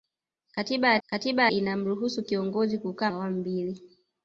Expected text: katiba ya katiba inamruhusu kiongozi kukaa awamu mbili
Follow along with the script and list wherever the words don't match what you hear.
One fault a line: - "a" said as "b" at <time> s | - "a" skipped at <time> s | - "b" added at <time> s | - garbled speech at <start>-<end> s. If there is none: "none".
none